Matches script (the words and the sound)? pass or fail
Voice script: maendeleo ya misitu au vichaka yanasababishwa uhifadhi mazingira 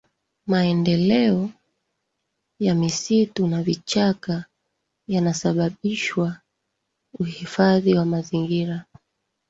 fail